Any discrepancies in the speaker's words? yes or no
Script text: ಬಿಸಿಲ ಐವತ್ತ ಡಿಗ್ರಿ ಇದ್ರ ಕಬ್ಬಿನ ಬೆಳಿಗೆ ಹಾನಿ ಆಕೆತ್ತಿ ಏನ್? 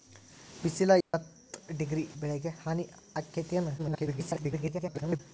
yes